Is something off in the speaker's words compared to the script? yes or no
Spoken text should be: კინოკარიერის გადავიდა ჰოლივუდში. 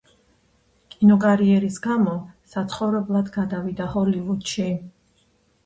yes